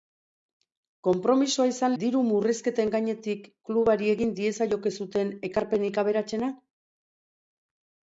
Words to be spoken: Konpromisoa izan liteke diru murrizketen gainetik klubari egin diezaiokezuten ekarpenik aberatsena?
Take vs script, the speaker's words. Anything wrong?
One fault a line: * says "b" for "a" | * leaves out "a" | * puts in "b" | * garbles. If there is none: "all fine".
* leaves out "liteke"